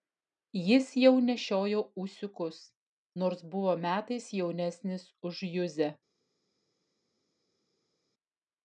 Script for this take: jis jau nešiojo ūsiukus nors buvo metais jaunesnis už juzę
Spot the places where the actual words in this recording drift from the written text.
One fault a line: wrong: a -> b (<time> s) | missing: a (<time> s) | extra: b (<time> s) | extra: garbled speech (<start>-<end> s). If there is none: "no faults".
no faults